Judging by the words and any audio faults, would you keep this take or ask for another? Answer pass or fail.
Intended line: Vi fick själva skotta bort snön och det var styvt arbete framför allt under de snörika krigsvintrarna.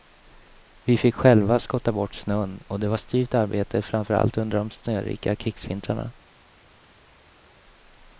pass